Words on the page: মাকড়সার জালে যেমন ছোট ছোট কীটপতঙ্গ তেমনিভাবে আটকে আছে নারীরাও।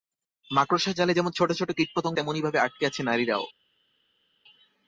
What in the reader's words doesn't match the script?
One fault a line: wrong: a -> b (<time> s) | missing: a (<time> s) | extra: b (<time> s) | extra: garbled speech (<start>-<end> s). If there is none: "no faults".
no faults